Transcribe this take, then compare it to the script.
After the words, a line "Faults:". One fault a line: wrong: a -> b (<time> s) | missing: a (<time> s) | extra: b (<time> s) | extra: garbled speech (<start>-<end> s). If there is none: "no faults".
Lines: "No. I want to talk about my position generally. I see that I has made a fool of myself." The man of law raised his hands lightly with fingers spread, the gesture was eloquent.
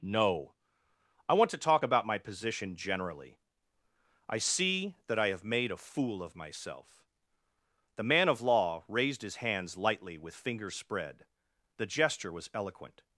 "No. I want to talk about my position generally. I see that I have made a fool of myself." The man of law raised his hands lightly with fingers spread, the gesture was eloquent.
Faults:
wrong: has -> have (5.3 s)